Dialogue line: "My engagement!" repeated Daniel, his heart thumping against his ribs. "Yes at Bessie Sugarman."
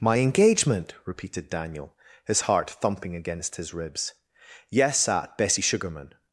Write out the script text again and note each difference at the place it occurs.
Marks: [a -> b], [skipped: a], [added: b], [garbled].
"My engagement!" repeated Daniel, his heart thumping against his ribs. "Yes at Bessie Sugarman."